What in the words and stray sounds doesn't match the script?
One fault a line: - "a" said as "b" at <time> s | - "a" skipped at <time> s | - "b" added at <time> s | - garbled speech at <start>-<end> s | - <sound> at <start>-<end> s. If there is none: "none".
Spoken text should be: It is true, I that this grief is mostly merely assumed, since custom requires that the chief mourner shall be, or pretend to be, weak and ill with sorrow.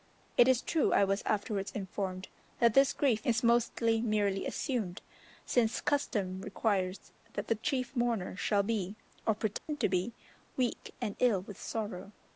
- "was afterwards informed" added at 1.0 s
- dropout at 9.6-9.7 s